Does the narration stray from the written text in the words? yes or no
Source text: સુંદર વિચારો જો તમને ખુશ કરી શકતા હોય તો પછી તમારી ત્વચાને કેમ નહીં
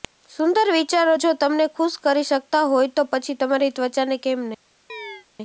no